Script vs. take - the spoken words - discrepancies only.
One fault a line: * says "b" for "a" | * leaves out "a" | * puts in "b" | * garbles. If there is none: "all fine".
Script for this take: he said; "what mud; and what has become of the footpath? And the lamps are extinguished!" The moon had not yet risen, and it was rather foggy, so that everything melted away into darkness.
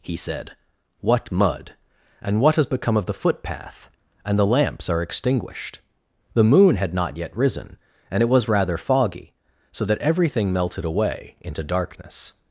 all fine